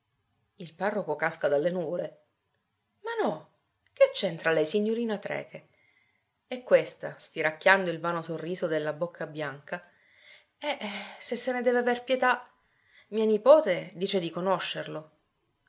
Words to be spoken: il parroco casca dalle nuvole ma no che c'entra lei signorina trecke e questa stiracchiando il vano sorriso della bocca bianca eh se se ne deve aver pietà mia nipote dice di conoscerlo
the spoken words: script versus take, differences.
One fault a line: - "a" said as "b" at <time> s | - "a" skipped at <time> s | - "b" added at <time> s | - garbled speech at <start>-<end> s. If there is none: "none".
none